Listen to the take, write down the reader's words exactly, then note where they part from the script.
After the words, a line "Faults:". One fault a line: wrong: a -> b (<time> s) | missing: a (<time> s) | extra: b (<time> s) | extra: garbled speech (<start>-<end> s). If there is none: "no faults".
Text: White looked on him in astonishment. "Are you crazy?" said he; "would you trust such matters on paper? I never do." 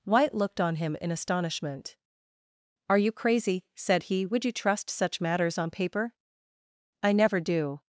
White looked on him in astonishment. "Are you crazy?" said he; "would you trust such matters on paper? I never do."
Faults:
no faults